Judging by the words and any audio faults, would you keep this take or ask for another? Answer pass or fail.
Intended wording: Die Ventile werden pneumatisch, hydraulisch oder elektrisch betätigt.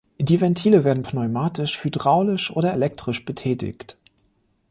pass